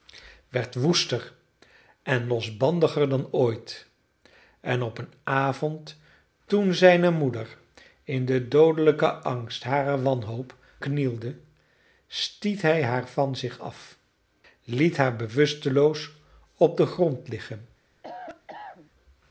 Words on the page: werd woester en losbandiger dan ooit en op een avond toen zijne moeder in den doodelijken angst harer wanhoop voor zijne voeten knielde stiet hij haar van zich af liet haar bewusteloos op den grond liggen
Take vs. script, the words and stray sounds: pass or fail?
fail